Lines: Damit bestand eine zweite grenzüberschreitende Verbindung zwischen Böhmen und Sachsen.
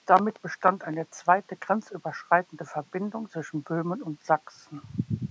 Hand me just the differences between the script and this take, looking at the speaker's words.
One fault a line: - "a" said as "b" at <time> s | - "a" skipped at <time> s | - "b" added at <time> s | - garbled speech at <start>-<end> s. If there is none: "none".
none